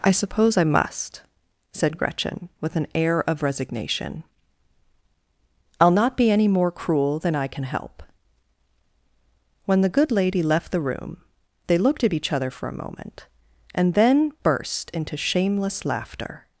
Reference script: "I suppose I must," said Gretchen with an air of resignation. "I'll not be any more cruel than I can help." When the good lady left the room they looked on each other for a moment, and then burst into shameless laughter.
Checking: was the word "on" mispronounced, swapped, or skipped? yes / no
yes